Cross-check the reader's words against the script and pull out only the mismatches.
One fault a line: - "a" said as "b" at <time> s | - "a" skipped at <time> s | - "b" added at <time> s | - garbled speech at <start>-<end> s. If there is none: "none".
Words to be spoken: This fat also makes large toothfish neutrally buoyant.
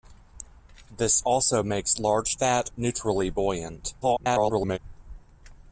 - "fat" skipped at 1.2 s
- "toothfish" said as "fat" at 2.4 s
- garbled speech at 4.0-4.8 s